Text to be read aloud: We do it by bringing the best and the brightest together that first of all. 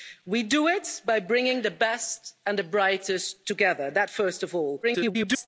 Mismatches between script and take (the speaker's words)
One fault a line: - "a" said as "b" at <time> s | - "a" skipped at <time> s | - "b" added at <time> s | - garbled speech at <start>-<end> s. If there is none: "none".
- garbled speech at 4.8-5.5 s